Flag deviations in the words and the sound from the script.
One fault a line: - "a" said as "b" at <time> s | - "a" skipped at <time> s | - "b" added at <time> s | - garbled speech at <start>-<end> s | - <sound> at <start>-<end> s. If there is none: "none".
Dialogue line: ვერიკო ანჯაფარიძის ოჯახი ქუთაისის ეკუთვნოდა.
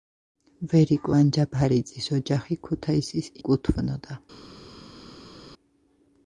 none